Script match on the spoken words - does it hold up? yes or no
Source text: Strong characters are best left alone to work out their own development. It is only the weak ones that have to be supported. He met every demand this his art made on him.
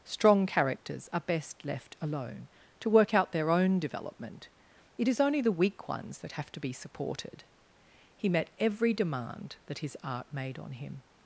no